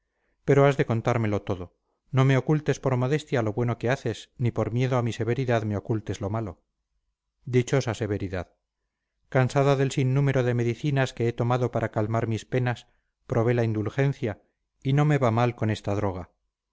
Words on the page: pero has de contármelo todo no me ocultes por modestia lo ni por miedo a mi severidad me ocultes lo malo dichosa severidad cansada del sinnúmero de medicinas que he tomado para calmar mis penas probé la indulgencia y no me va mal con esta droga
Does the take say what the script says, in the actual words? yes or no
no